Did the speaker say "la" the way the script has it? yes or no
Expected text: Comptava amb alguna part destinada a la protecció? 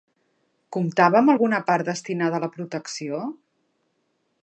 yes